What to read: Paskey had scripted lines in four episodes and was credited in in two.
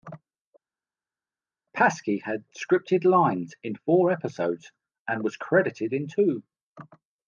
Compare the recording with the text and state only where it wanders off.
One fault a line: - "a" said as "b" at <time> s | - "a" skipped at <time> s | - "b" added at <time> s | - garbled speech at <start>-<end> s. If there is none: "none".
- "in" skipped at 6.1 s